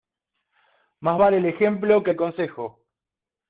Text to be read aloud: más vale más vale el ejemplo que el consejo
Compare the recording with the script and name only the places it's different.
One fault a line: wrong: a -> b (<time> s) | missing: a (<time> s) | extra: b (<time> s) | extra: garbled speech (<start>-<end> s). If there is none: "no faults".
missing: más vale (1.4 s)